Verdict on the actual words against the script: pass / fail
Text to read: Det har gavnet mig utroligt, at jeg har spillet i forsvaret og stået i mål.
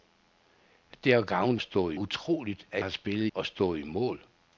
fail